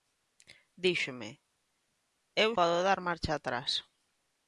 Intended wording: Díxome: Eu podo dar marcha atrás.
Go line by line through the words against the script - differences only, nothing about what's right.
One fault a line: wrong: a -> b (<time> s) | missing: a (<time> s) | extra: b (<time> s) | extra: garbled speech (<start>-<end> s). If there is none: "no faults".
no faults